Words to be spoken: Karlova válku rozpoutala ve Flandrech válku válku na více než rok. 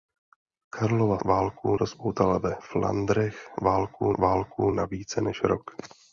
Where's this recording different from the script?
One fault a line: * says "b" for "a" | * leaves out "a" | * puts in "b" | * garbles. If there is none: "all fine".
all fine